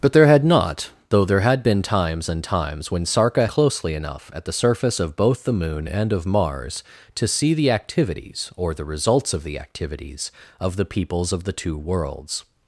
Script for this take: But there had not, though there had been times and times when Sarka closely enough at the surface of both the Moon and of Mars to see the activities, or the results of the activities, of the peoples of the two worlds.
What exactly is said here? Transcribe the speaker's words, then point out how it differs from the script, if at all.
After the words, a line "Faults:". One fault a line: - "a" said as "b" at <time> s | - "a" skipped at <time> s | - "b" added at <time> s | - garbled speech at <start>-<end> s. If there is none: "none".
But there had not, though there had been times and times when Sarka closely enough at the surface of both the Moon and of Mars to see the activities, or the results of the activities, of the peoples of the two worlds.
Faults:
none